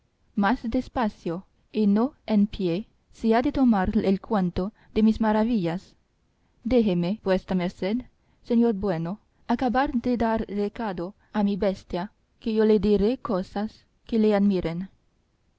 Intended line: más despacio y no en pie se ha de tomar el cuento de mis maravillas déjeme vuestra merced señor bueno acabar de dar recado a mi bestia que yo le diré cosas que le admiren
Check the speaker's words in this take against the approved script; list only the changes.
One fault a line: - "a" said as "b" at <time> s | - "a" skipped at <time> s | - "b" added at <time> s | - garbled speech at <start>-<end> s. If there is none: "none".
none